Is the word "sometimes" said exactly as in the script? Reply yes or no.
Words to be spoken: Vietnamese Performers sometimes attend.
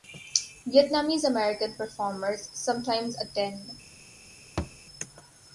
yes